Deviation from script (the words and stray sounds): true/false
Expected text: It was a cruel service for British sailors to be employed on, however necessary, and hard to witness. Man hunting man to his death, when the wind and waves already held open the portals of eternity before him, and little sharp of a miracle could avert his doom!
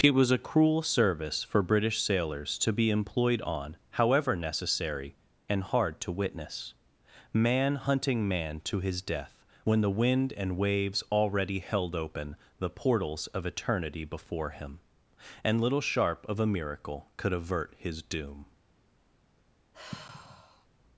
true